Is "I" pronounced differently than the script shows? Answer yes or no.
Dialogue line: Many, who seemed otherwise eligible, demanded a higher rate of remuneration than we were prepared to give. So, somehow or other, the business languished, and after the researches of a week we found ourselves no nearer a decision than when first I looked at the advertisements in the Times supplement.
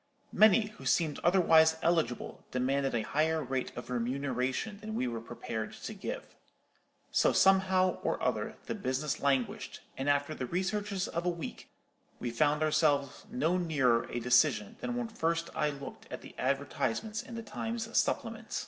no